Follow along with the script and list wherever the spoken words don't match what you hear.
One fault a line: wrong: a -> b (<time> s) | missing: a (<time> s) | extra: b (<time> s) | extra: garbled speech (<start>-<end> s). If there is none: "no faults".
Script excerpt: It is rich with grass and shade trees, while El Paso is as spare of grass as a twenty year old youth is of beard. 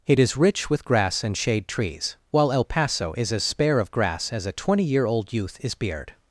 missing: of (5.8 s)